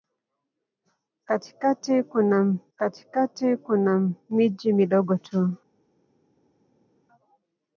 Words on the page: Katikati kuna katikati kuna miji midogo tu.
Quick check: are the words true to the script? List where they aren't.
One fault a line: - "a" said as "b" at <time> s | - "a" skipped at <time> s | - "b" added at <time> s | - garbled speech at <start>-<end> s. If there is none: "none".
none